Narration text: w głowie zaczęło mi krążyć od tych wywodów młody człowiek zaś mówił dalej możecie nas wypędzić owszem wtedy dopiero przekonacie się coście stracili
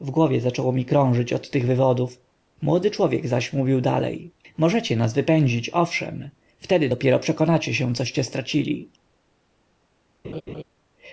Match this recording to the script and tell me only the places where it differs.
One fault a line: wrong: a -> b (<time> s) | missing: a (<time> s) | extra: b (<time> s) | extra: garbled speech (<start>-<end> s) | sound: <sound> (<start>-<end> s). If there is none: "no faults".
sound: laugh (10.2-10.6 s)